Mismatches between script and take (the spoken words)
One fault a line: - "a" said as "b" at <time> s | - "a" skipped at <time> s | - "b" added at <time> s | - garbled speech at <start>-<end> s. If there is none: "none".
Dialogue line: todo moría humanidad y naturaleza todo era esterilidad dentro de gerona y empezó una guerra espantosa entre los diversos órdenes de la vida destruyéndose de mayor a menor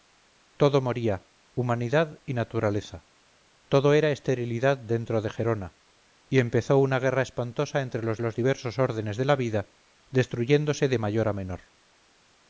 - "los" added at 8.2 s